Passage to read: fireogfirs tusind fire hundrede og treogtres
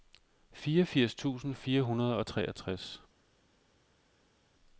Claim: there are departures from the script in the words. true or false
false